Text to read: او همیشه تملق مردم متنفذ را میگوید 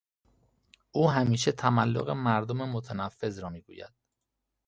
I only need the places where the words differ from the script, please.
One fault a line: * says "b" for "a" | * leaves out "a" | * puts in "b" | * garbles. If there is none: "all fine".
all fine